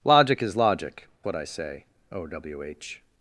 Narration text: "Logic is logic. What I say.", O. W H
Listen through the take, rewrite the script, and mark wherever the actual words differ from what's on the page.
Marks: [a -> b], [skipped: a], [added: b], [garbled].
"Logic is logic. What I say.", O. W H